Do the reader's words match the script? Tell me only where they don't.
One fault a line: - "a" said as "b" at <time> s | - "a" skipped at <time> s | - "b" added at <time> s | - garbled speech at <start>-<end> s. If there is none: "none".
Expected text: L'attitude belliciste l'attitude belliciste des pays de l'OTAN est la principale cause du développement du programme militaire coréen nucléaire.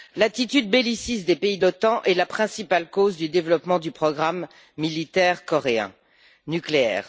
- "l'attitude belliciste" skipped at 1.2 s